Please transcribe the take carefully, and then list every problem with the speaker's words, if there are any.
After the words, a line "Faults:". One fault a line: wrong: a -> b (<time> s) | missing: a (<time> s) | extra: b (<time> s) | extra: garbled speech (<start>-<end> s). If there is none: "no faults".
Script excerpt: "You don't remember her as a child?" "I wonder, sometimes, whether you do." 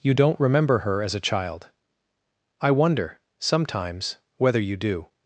"You don't remember her as a child?" "I wonder, sometimes, whether you do."
Faults:
no faults